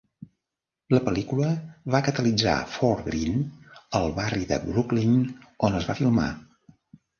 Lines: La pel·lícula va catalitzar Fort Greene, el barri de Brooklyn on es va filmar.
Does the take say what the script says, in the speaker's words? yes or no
yes